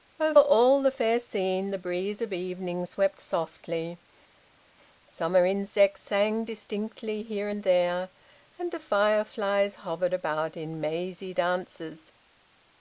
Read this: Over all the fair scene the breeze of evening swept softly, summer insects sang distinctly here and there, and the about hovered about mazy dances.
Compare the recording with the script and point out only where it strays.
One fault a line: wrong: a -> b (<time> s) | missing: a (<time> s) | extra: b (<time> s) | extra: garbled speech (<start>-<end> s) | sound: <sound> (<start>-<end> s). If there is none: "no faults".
wrong: about -> fireflies (8.8 s)
extra: in (10.6 s)